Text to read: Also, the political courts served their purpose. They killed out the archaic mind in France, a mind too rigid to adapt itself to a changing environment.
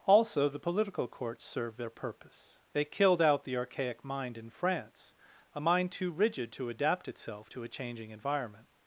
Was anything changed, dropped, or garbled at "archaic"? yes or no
no